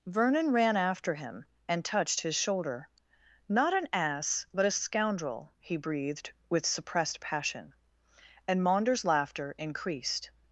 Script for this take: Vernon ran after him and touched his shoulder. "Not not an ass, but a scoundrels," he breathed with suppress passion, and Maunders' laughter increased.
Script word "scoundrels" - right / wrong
wrong